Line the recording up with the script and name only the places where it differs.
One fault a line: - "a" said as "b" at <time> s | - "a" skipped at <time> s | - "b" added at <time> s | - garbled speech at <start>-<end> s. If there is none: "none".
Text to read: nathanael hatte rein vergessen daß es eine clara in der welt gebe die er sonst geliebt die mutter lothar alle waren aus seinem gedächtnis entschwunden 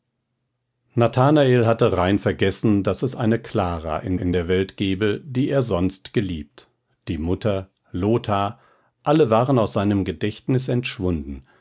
- "in" added at 4.1 s